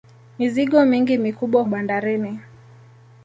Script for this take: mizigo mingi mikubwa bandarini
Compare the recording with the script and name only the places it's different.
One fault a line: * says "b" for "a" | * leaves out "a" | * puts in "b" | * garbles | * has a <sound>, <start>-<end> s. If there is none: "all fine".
all fine